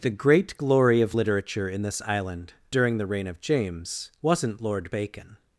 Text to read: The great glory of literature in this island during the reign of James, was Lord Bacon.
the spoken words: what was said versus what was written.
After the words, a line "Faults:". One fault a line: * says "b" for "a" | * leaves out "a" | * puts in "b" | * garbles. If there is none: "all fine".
The great glory of literature in this island during the reign of James, wasn't Lord Bacon.
Faults:
* says "wasn't" for "was"